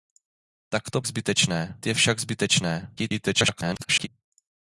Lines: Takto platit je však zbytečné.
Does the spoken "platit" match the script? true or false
false